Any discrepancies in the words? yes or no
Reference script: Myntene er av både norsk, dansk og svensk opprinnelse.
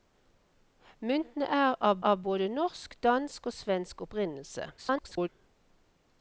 yes